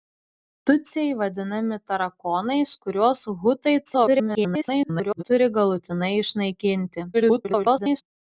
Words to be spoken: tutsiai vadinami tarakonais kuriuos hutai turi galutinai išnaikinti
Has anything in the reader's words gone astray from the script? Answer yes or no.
yes